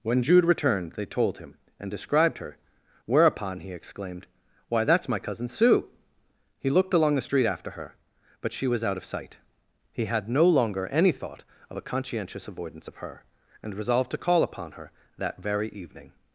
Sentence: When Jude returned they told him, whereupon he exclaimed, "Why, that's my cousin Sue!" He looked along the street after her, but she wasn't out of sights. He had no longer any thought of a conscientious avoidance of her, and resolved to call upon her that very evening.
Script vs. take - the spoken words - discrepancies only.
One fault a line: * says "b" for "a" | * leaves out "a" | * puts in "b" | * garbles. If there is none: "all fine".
* puts in "and described her"
* says "was" for "wasn't"
* says "sight" for "sights"